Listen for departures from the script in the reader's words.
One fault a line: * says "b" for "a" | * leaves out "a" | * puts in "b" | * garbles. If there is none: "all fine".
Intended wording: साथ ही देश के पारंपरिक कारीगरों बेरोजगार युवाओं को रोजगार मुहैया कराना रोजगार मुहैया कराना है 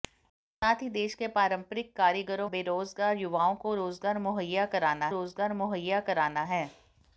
all fine